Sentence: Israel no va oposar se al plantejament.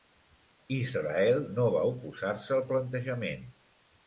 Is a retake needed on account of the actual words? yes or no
no